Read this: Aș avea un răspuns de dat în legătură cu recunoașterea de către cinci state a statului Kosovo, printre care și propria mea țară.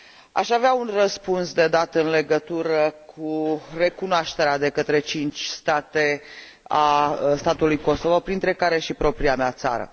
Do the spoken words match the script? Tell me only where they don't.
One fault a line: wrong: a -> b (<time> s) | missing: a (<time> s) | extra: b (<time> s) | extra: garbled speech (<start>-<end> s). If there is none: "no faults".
no faults